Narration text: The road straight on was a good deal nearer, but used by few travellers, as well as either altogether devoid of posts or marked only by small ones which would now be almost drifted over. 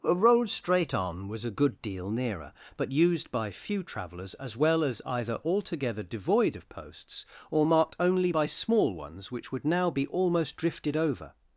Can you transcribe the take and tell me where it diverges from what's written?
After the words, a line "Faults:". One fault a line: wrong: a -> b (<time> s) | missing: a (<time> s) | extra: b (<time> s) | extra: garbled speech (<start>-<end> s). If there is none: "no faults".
A road straight on was a good deal nearer, but used by few travellers, as well as either altogether devoid of posts or marked only by small ones which would now be almost drifted over.
Faults:
wrong: The -> A (0.0 s)